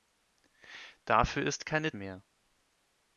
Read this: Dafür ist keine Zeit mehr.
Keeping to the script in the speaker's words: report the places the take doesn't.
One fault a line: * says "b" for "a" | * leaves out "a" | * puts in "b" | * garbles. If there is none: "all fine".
* leaves out "Zeit"